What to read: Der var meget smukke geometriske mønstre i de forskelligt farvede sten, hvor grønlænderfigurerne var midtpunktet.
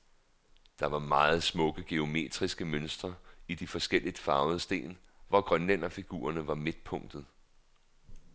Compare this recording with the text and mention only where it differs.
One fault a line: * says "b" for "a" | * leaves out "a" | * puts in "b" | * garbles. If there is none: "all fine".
all fine